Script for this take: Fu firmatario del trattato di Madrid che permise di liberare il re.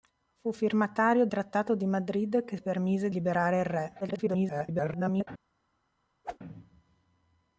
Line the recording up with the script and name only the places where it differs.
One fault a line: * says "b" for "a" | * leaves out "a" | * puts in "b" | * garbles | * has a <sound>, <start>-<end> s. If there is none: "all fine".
* leaves out "del"
* leaves out "di"
* garbles
* has a whoosh, 6.2-6.4 s